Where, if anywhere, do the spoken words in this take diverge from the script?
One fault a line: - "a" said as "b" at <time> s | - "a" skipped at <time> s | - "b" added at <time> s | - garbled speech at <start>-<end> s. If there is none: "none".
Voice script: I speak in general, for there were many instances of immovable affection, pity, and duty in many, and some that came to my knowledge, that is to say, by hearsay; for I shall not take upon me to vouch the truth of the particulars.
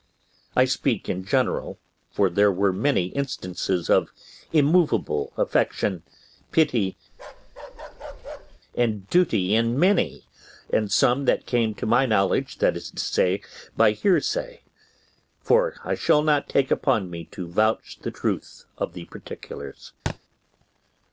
none